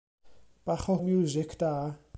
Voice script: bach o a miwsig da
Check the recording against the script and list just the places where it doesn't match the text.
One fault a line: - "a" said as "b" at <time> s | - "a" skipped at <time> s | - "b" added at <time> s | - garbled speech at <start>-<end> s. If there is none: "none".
none